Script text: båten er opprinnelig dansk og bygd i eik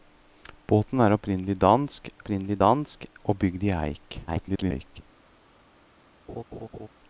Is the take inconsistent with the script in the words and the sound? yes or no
yes